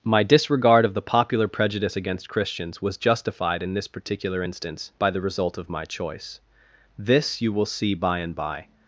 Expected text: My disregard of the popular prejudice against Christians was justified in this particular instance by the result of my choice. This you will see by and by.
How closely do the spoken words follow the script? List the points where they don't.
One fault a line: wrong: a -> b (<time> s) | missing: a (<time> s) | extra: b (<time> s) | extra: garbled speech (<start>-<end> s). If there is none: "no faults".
no faults